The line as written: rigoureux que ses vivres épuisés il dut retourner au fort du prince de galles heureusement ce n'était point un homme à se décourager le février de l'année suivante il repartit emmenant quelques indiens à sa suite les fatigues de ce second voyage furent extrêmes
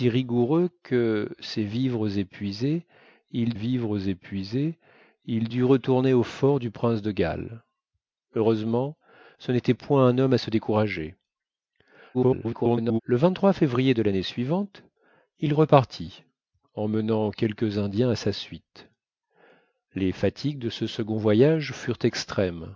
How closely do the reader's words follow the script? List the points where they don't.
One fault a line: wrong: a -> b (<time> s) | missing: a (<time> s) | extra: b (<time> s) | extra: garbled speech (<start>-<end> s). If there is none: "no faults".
extra: vivres épuisés il (3.5 s)
extra: garbled speech (12.1-13.0 s)